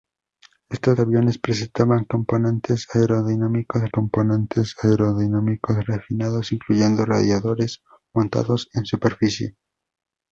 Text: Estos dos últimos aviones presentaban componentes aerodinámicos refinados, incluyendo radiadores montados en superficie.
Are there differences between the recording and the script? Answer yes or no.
yes